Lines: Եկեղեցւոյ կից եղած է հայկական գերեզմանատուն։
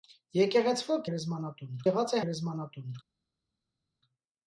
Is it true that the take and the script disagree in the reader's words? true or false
true